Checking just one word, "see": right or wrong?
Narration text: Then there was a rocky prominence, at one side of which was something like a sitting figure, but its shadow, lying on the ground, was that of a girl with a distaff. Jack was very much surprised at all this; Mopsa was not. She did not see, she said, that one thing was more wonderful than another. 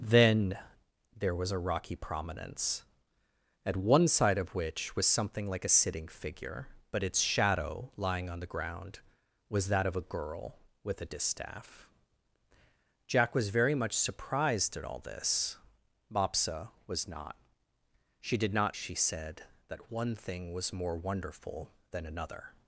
wrong